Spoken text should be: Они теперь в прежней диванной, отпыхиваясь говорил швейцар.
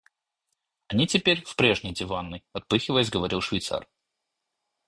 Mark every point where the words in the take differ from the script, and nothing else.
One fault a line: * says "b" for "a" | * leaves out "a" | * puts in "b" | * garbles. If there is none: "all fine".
all fine